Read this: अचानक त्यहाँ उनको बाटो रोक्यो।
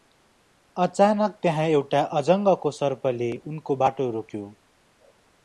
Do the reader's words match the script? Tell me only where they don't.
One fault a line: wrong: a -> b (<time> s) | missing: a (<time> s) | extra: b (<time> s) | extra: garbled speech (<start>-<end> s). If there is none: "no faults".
extra: एउटा अजङ्गको सर्पले (1.7 s)